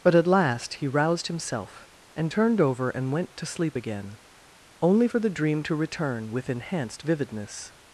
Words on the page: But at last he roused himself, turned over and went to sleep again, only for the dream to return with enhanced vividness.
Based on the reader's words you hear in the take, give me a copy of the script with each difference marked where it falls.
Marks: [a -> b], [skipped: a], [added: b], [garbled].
But at last he roused himself, [added: and] turned over and went to sleep again, only for the dream to return with enhanced vividness.